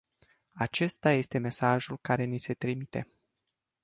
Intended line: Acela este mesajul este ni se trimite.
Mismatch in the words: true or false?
true